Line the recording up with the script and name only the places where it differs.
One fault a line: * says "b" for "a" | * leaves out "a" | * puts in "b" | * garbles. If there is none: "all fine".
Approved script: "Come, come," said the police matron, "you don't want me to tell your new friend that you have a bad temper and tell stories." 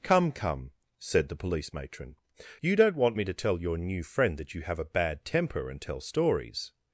all fine